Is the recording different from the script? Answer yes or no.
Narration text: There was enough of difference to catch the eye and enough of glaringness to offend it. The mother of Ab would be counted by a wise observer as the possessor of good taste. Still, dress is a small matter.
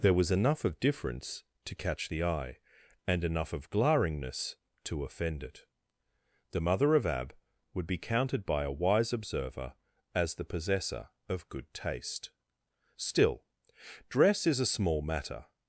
no